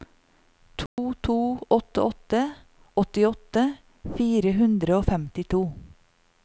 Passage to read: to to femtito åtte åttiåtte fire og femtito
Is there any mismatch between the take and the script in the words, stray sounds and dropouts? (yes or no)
yes